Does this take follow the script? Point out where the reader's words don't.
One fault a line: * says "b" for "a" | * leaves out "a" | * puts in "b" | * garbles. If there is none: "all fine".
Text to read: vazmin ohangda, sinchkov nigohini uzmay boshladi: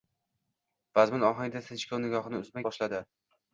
all fine